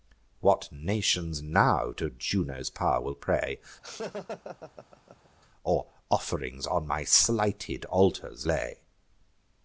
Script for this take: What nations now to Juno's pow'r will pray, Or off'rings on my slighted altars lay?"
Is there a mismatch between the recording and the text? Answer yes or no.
no